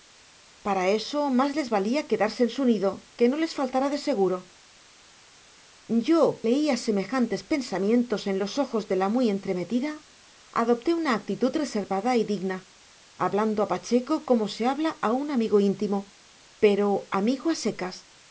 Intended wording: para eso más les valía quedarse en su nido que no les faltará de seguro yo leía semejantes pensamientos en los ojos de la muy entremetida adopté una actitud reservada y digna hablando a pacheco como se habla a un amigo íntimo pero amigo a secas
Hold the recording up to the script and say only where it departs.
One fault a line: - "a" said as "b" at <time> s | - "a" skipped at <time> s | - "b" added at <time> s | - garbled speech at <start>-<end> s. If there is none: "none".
none